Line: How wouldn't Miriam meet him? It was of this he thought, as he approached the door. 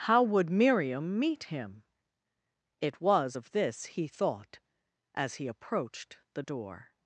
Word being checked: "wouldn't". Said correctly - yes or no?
no